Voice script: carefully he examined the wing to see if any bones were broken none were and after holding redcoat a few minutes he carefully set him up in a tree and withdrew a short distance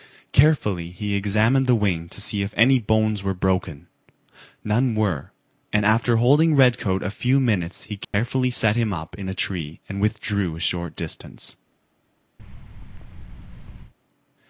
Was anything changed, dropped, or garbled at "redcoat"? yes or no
no